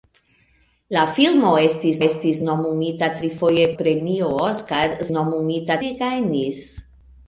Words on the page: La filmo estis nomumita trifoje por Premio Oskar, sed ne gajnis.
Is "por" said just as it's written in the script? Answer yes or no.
no